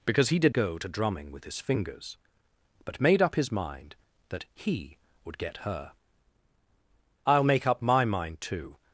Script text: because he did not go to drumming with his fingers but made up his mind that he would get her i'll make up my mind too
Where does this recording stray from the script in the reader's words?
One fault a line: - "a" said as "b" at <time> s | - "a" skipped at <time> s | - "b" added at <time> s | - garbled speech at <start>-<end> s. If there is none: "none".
- "not" skipped at 0.6 s